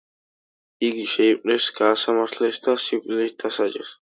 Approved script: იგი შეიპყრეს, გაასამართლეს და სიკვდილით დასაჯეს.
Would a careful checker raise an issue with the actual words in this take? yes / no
no